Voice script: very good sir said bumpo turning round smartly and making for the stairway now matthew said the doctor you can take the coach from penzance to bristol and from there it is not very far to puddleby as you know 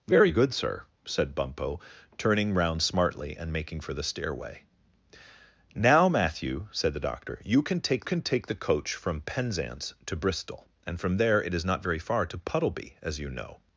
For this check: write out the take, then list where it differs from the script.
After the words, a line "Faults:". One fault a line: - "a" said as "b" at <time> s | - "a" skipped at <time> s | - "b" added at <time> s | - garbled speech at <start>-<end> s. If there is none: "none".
very good sir said bumpo turning round smartly and making for the stairway now matthew said the doctor you can take can take the coach from penzance to bristol and from there it is not very far to puddleby as you know
Faults:
- "can take" added at 8.0 s